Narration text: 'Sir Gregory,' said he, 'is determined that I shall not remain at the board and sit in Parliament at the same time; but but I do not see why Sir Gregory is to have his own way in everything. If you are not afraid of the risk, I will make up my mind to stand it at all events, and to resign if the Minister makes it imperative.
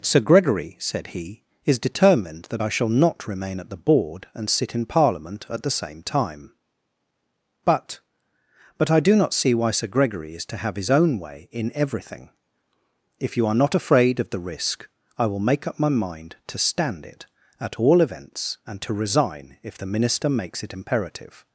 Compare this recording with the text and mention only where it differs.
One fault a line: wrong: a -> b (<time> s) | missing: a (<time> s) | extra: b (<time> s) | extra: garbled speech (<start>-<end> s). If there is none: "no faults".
no faults